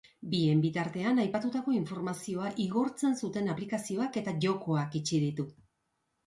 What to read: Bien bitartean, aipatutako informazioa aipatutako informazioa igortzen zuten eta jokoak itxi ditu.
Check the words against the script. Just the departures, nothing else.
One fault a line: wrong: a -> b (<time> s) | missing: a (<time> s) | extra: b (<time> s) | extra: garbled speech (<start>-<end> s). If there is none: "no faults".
missing: aipatutako informazioa (2.5 s)
extra: aplikazioak (3.5 s)